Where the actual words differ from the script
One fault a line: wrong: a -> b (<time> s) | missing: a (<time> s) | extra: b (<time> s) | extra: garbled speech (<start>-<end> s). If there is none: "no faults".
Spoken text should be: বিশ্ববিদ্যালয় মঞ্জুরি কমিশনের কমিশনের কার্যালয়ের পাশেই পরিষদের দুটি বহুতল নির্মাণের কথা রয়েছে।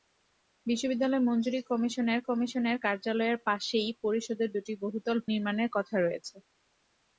no faults